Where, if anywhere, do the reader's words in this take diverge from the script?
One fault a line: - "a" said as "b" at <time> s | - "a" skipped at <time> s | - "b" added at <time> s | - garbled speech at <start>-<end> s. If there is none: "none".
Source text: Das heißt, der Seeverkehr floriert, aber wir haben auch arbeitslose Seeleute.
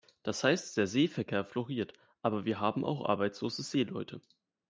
none